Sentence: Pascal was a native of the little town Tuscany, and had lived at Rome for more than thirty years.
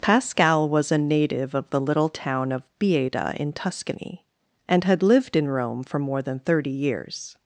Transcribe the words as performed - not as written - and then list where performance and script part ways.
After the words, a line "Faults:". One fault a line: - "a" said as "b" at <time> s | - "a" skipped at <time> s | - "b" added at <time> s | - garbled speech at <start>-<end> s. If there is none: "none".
Pascal was a native of the little town of Bieda in Tuscany, and had lived in Rome for more than thirty years.
Faults:
- "of Bieda in" added at 2.5 s
- "at" said as "in" at 5.3 s